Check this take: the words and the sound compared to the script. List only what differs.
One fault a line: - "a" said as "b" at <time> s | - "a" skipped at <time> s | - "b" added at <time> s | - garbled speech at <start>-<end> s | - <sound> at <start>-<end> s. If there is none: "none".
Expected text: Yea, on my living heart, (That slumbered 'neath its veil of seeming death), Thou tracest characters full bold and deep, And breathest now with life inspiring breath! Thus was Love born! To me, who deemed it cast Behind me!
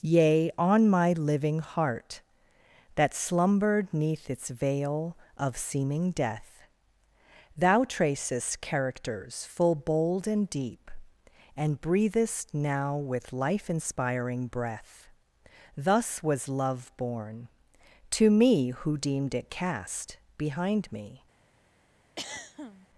- throat clearing at 22.2-22.9 s